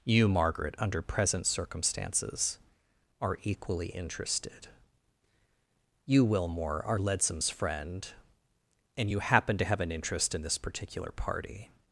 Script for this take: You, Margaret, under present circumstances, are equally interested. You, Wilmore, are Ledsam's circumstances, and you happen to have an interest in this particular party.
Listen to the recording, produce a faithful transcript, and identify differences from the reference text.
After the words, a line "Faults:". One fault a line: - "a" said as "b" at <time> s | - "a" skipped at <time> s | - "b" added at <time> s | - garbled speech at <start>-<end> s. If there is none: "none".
You, Margaret, under present circumstances, are equally interested. You, Wilmore, are Ledsam's friend, and you happen to have an interest in this particular party.
Faults:
- "circumstances" said as "friend" at 7.5 s